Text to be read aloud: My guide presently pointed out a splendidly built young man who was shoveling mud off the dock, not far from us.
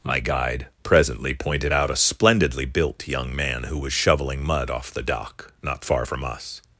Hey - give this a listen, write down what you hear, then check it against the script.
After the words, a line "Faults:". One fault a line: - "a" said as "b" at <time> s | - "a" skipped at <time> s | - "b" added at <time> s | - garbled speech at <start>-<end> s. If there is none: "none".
My guide presently pointed out a splendidly built young man who was shoveling mud off the dock, not far from us.
Faults:
none